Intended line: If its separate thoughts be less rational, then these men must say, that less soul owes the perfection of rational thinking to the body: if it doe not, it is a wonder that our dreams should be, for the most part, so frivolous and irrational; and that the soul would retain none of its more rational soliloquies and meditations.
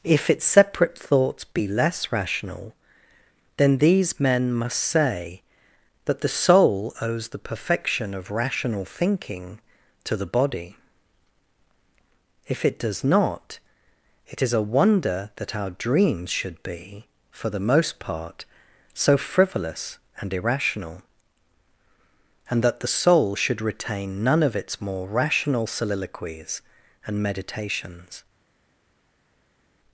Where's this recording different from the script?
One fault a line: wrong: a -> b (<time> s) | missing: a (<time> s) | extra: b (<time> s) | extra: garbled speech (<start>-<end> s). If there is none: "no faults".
wrong: less -> the (6.2 s)
wrong: doe -> does (12.8 s)
wrong: would -> should (23.4 s)